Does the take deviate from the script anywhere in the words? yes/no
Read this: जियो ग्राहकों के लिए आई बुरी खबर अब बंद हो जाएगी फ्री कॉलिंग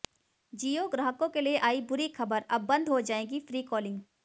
no